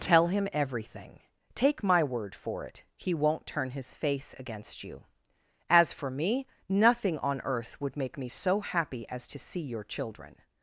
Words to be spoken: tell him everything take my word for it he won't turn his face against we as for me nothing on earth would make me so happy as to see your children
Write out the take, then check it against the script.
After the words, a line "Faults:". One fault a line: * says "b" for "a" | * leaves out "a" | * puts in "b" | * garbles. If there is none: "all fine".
tell him everything take my word for it he won't turn his face against you as for me nothing on earth would make me so happy as to see your children
Faults:
* says "you" for "we"